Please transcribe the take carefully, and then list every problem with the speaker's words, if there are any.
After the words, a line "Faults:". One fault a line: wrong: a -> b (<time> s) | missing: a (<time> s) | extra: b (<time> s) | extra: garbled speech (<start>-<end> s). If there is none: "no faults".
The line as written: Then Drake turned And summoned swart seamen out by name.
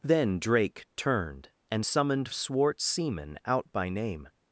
Then Drake turned And summoned swart seamen out by name.
Faults:
no faults